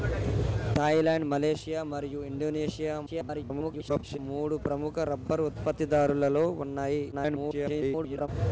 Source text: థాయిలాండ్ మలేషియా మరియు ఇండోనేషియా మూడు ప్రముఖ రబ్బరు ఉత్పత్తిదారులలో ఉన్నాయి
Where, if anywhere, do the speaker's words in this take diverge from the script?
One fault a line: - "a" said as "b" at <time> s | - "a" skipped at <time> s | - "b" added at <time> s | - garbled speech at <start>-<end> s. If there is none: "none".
- garbled speech at 3.1-4.2 s
- garbled speech at 7.1-8.3 s